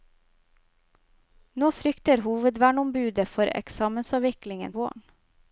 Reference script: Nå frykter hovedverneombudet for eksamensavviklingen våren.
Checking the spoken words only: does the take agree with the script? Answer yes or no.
yes